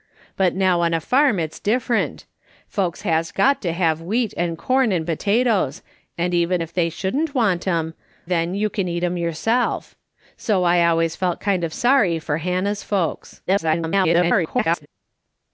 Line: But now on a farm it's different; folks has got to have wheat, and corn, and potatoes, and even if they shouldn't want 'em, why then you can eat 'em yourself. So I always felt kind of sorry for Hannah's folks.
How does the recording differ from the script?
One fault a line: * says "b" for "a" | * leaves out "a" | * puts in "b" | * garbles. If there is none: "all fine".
* leaves out "why"
* garbles